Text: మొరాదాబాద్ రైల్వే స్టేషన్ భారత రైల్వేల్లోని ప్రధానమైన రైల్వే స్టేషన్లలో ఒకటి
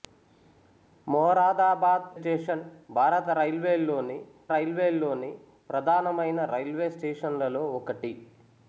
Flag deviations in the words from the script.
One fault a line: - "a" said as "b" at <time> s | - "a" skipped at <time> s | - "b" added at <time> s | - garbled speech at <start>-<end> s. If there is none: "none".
- "రైల్వే" skipped at 2.1 s
- "రైల్వేల్లోని" added at 4.5 s